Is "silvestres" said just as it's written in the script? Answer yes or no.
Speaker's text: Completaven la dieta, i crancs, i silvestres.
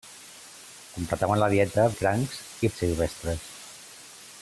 yes